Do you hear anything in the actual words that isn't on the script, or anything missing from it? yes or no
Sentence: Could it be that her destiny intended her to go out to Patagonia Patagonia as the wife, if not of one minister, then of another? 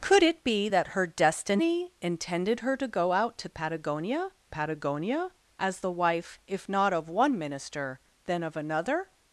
no